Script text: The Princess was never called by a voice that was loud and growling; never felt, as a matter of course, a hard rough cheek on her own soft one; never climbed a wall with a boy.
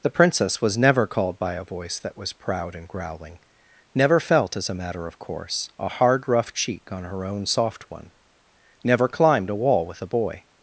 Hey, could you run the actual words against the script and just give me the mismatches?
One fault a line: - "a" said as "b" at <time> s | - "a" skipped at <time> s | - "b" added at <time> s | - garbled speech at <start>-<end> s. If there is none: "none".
- "loud" said as "proud" at 2.3 s